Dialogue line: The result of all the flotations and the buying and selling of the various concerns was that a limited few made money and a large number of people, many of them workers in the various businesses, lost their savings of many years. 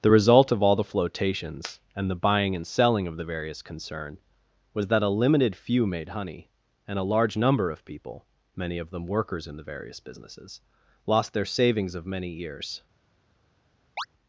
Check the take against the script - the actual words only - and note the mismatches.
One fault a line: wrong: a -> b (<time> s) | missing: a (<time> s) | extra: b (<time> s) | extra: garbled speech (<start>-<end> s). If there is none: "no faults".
wrong: concerns -> concern (3.6 s)
wrong: money -> honey (6.1 s)